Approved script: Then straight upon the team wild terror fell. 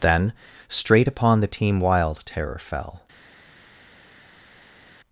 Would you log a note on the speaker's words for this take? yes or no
no